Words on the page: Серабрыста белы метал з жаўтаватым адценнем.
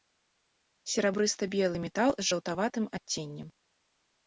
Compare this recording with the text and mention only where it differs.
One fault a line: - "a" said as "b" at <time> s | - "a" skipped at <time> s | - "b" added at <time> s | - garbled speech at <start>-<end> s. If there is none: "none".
none